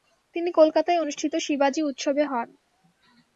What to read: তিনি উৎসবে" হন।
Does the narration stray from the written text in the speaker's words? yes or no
yes